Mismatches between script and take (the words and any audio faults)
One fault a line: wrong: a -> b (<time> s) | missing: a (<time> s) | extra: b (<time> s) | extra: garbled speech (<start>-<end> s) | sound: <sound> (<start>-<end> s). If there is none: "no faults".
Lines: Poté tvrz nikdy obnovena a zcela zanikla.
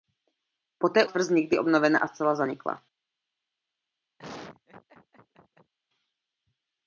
sound: laugh (4.2-5.7 s)